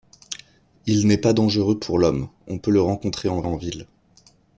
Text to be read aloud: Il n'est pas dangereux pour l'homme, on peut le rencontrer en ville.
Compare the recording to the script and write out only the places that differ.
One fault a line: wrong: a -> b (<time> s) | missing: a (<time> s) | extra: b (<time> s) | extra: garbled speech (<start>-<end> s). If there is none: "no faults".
extra: en (3.4 s)